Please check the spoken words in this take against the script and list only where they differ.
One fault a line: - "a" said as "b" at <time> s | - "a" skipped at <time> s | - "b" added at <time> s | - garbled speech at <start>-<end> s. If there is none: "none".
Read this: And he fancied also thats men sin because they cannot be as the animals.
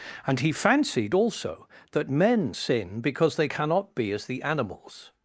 - "thats" said as "that" at 1.9 s